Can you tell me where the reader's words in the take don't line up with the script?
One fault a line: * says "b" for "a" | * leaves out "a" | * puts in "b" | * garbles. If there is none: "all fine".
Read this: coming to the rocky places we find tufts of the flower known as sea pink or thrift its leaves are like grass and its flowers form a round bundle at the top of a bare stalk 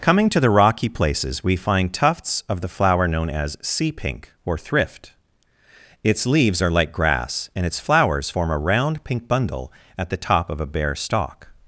* puts in "pink"